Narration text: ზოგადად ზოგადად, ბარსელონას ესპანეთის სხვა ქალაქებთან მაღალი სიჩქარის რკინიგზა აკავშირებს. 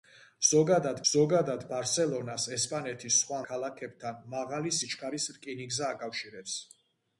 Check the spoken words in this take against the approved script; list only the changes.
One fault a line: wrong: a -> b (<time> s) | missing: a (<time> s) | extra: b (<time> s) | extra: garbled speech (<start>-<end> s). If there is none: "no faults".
no faults